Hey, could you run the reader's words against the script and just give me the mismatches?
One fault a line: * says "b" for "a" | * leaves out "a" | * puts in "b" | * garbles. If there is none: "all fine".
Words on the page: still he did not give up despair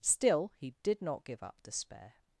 all fine